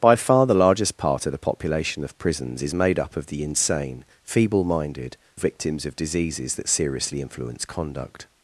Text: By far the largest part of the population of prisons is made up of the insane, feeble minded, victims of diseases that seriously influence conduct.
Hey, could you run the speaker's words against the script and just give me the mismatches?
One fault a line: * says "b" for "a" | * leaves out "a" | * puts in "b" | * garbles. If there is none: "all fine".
all fine